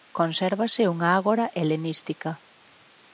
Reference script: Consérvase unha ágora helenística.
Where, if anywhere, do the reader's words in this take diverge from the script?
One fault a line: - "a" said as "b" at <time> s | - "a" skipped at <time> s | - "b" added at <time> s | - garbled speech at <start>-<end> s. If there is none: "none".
none